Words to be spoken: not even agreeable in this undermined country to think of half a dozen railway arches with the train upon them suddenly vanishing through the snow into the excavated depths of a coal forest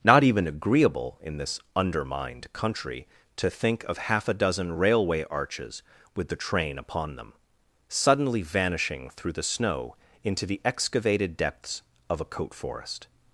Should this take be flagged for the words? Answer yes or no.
yes